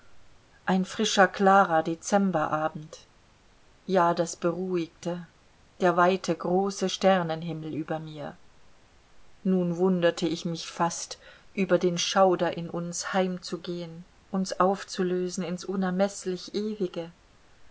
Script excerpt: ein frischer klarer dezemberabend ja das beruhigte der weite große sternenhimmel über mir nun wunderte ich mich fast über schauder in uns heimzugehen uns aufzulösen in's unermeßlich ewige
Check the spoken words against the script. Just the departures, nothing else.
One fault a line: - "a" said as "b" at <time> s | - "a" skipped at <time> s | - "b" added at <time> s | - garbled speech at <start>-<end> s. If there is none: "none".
- "den" added at 11.8 s